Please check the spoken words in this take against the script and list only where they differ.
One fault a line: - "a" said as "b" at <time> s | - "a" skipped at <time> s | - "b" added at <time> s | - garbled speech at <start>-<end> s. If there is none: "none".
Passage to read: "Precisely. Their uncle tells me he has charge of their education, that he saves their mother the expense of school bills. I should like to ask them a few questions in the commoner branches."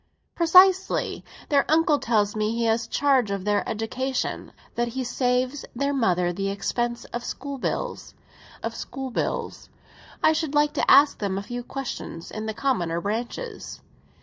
- "of school bills" added at 8.6 s